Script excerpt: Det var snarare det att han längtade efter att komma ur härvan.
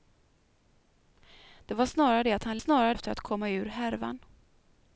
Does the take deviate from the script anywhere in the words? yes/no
yes